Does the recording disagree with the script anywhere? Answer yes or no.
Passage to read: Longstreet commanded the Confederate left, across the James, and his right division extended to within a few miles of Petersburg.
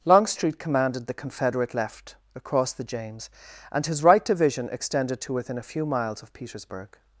no